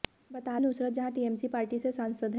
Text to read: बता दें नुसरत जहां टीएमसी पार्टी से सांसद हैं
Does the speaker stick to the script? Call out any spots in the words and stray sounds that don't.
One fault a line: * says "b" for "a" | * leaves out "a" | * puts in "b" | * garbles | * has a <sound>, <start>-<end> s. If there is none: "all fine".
* leaves out "दें"